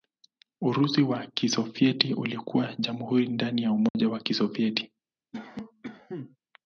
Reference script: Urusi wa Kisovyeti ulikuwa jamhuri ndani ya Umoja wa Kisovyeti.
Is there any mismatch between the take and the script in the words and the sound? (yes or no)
yes